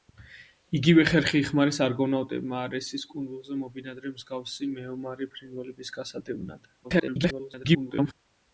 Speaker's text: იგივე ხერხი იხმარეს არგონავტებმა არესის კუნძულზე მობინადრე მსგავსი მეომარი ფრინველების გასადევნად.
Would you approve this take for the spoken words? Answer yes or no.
no